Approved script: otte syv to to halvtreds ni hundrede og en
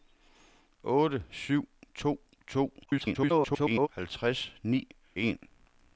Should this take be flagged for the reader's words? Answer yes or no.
yes